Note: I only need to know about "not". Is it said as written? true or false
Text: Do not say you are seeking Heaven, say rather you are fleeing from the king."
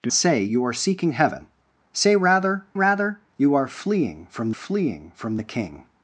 false